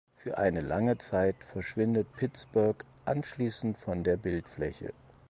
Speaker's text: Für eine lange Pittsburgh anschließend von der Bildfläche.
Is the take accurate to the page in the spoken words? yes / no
no